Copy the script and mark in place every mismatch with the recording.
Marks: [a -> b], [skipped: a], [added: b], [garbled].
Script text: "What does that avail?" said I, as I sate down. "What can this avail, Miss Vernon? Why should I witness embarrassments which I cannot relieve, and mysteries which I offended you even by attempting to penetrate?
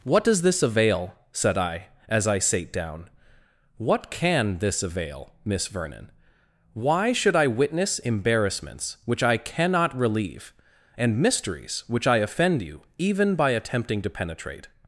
"What does [that -> this] avail?" said I, as I sate down. "What can this avail, Miss Vernon? Why should I witness embarrassments which I cannot relieve, and mysteries which I [offended -> offend] you even by attempting to penetrate?